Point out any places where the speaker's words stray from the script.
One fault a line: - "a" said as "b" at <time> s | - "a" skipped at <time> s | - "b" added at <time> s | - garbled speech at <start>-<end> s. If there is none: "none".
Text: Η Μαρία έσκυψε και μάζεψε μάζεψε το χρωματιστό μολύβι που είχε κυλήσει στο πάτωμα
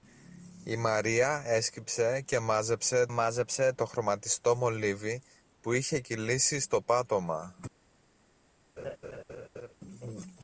none